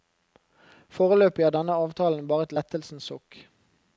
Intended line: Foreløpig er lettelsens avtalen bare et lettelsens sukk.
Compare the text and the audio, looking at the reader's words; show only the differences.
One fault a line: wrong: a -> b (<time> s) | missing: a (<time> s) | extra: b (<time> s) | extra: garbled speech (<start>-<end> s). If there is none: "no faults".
wrong: lettelsens -> denne (1.6 s)